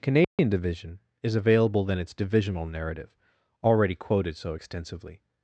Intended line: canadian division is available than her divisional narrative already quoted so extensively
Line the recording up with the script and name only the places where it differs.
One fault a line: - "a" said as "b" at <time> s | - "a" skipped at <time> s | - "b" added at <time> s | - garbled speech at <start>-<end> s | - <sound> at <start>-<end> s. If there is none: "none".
- dropout at 0.2-0.4 s
- "her" said as "its" at 2.0 s